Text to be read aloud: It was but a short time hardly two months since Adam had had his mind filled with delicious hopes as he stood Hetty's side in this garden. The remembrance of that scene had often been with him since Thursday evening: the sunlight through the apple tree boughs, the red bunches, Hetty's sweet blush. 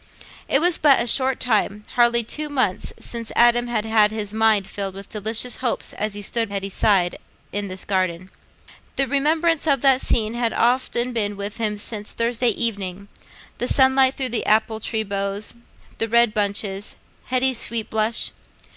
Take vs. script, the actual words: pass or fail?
pass